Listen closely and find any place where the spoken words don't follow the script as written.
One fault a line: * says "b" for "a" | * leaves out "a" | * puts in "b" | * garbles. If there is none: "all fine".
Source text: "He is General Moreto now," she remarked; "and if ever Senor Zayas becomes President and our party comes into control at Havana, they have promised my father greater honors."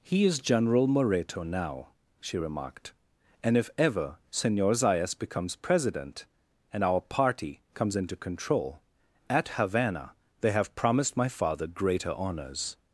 all fine